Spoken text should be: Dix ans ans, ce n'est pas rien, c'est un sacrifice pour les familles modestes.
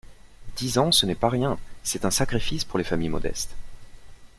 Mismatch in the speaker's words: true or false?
true